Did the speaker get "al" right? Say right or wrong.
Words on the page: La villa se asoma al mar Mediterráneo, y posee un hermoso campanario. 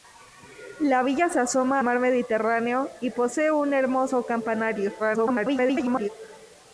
wrong